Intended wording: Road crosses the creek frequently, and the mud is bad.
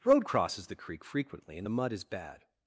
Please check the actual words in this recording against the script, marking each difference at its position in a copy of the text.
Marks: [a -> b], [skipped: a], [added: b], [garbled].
Road crosses the creek frequently, and the mud is bad.